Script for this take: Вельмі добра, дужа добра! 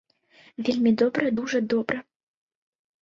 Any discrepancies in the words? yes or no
no